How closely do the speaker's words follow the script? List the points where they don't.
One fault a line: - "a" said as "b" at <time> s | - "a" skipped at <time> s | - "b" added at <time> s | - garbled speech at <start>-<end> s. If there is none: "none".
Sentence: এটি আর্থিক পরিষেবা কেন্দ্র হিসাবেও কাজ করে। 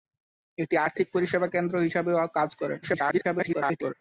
- garbled speech at 2.8-3.9 s